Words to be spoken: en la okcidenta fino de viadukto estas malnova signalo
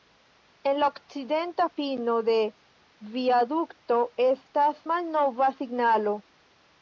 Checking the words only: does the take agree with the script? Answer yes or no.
yes